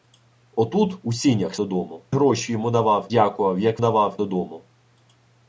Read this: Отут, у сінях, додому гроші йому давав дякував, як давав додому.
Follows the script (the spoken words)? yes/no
yes